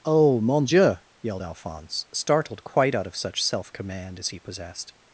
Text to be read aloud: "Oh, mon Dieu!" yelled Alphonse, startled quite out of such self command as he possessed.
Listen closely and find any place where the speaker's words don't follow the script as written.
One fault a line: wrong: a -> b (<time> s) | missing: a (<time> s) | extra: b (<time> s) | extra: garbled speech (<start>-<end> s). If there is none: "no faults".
no faults